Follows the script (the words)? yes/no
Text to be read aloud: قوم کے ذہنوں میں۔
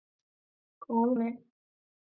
no